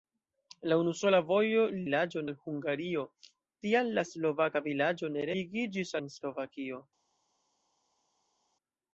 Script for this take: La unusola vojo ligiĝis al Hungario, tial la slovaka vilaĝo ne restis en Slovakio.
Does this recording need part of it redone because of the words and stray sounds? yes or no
yes